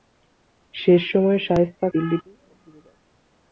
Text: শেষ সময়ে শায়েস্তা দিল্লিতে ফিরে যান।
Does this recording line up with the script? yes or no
yes